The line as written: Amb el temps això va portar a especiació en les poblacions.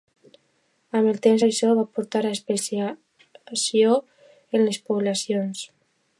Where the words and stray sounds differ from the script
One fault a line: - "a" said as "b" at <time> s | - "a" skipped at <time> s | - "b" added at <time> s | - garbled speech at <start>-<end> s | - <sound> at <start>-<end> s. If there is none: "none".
none